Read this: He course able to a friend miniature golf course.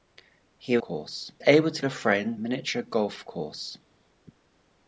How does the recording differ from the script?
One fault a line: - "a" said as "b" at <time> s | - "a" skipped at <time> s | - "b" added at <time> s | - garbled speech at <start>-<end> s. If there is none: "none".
none